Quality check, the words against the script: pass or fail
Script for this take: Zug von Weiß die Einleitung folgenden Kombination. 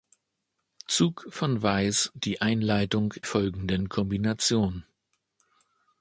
pass